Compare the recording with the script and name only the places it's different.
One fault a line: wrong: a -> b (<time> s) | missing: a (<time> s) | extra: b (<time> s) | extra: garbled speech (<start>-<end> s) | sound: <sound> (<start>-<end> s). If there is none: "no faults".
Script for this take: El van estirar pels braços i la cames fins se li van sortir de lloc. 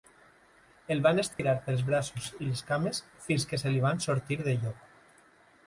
sound: dropout (1.3-1.4 s)
wrong: la -> les (2.5 s)
extra: que (3.5 s)